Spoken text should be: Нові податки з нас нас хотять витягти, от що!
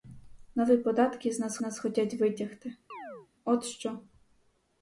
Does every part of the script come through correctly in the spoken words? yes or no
yes